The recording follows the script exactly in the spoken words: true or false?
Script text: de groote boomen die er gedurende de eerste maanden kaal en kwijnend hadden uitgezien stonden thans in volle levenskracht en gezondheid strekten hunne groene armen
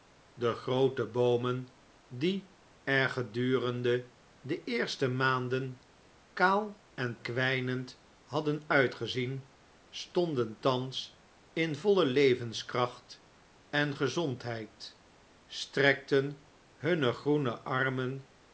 true